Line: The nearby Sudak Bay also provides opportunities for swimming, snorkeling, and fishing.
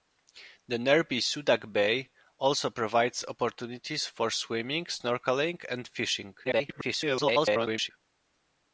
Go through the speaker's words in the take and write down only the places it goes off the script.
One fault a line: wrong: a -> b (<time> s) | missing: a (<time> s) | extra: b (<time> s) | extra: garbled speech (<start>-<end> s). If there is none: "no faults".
extra: garbled speech (6.4-7.9 s)